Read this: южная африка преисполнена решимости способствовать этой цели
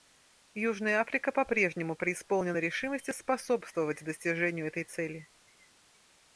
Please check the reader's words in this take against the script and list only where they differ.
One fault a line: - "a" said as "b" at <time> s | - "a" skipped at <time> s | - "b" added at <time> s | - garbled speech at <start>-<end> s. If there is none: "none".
- "по прежнему" added at 1.3 s
- "достижению" added at 4.0 s